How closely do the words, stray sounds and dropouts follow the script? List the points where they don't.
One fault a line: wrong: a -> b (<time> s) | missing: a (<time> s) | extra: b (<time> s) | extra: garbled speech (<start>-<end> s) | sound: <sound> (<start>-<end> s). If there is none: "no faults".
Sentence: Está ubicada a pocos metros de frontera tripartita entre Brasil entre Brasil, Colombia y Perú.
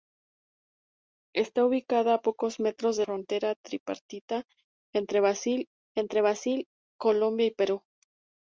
no faults